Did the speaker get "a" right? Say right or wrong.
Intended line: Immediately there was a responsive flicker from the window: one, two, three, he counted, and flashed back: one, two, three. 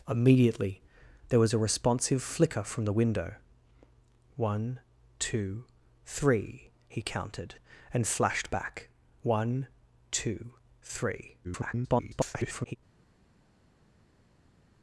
right